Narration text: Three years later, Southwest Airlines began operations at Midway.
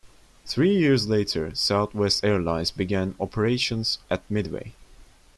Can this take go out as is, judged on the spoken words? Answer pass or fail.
pass